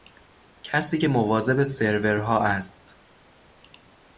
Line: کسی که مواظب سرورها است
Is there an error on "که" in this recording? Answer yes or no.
no